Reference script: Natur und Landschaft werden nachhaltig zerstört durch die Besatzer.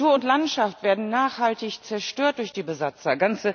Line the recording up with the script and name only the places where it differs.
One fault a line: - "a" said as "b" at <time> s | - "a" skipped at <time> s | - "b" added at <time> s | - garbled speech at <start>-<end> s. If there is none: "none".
none